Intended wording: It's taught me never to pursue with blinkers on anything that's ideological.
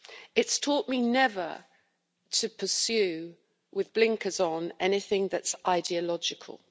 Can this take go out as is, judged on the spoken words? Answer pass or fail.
pass